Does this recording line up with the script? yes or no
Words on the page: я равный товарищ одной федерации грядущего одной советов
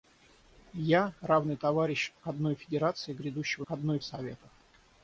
yes